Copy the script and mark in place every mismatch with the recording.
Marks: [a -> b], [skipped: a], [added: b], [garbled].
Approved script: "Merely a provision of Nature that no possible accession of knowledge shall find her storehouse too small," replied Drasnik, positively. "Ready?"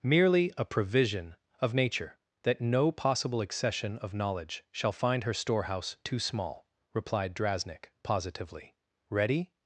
"Merely a provision of Nature that no possible accession of knowledge shall find her storehouse too small," replied Drasnik, positively. "Ready?"